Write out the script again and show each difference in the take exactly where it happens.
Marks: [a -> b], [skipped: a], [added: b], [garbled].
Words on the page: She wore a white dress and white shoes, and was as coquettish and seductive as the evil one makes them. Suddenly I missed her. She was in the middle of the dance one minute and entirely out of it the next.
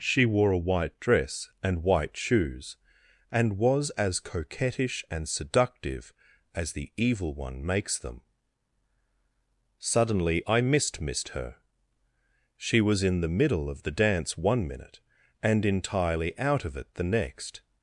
She wore a white dress and white shoes, and was as coquettish and seductive as the evil one makes them. Suddenly I missed [added: missed] her. She was in the middle of the dance one minute and entirely out of it the next.